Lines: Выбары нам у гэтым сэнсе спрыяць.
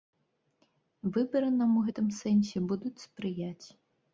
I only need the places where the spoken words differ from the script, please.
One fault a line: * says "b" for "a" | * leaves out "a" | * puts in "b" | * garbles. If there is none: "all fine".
* puts in "будуць"